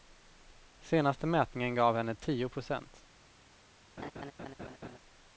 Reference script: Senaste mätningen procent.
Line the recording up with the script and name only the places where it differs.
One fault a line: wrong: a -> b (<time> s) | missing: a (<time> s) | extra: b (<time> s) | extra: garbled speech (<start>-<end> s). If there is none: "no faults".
extra: gav henne tio (1.8 s)